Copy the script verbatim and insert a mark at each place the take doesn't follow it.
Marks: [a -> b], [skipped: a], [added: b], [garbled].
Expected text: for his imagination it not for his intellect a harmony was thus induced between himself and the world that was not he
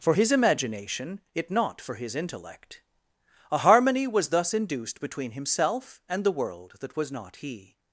for his imagination it not for his intellect a harmony was thus induced between himself and the world that was not he